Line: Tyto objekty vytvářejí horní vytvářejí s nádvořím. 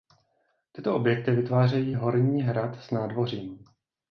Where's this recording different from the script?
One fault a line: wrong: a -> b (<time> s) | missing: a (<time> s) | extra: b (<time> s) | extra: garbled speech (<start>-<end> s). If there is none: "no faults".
wrong: vytvářejí -> hrad (2.4 s)